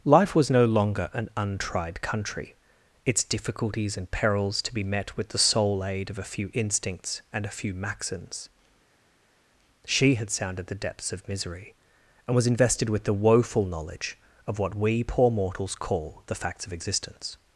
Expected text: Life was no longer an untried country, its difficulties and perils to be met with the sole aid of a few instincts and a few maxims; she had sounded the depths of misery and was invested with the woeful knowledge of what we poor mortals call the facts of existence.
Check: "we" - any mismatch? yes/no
no